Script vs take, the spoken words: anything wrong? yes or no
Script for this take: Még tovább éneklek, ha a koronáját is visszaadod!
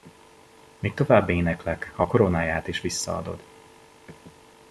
no